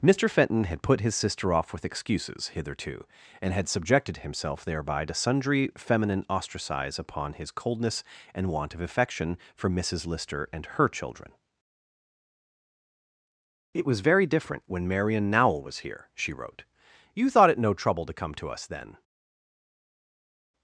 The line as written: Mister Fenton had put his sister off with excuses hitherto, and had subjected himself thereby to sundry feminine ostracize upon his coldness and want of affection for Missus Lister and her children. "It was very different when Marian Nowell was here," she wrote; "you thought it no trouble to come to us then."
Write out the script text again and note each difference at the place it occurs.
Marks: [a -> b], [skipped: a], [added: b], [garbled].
Mister Fenton had put his sister off with excuses hitherto, and had subjected himself thereby to sundry feminine ostracize upon his coldness and want of affection for Missus Lister and her children. "It was very different when Marian Nowell was here," she wrote; "you thought it no trouble to come to us then."